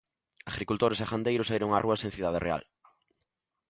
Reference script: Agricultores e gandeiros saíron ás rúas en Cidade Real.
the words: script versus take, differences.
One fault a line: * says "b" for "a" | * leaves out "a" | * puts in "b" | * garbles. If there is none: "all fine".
all fine